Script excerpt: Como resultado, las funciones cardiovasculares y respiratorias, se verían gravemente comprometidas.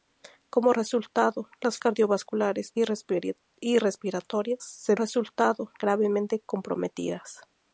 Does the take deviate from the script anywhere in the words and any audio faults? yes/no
yes